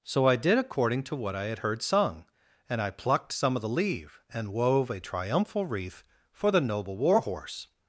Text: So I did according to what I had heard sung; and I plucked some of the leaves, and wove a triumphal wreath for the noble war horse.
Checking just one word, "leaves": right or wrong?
wrong